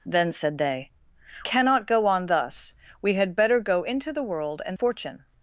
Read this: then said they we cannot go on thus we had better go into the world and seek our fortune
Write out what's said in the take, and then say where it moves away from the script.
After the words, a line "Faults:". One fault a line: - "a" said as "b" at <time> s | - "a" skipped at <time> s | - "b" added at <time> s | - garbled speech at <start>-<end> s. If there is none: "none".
then said they cannot go on thus we had better go into the world and fortune
Faults:
- "we" skipped at 0.9 s
- "seek our" skipped at 4.8 s